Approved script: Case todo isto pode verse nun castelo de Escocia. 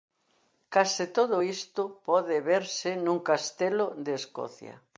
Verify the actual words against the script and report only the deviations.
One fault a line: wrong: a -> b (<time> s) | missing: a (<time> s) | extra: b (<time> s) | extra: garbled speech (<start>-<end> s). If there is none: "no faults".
no faults